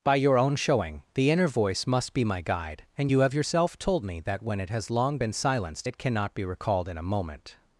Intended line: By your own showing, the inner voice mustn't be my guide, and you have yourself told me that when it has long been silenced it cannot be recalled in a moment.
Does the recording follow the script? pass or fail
fail